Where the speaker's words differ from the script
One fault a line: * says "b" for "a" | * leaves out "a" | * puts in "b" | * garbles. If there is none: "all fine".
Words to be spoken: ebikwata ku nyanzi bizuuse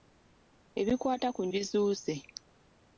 * leaves out "nyanzi"